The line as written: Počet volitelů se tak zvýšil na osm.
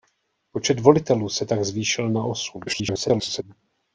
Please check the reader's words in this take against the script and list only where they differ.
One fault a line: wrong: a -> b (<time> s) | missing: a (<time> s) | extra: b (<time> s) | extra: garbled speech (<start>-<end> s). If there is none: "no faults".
extra: garbled speech (2.7-3.4 s)